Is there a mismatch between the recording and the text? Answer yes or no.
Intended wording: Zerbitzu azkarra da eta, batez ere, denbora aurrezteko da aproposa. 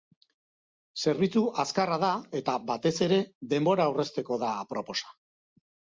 no